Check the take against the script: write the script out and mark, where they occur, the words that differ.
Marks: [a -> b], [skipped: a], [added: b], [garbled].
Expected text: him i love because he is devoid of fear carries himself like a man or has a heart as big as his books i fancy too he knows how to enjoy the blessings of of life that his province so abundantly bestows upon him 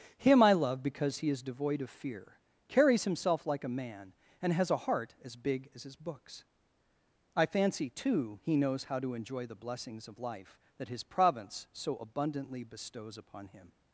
him i love because he is devoid of fear carries himself like a man [or -> and] has a heart as big as his books i fancy too he knows how to enjoy the blessings of [skipped: of] life that his province so abundantly bestows upon him